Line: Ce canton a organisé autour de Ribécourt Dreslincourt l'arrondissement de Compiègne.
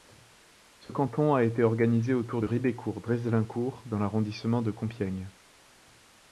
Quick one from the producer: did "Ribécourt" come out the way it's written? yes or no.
yes